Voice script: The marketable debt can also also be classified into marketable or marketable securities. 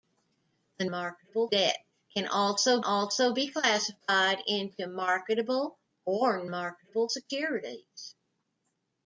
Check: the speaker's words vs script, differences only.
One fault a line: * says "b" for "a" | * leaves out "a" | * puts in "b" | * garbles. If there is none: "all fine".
all fine